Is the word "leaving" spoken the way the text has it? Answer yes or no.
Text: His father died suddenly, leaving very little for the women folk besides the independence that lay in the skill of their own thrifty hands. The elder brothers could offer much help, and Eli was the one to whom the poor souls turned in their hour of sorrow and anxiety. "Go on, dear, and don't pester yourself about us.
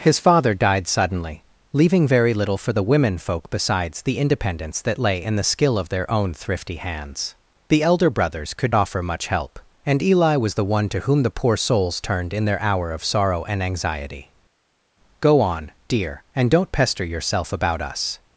yes